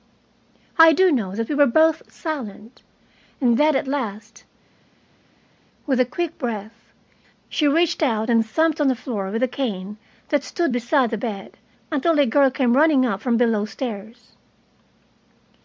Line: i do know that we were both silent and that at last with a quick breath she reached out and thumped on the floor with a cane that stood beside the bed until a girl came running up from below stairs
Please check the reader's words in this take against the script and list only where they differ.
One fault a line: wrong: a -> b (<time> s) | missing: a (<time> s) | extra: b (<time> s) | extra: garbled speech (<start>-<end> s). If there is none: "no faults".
no faults